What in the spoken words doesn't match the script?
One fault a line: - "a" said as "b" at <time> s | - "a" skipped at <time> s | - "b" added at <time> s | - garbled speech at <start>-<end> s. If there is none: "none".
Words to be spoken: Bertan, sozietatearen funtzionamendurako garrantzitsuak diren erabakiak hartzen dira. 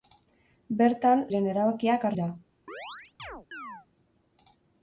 - "sozietatearen funtzionamendurako garrantzitsuak" skipped at 1.2 s
- "hartzen" skipped at 2.1 s